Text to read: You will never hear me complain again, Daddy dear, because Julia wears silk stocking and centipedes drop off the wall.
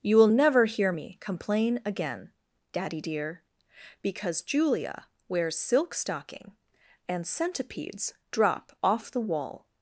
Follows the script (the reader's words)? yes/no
yes